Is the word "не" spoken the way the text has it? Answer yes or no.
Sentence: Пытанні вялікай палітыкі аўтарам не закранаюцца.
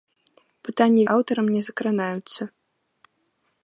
yes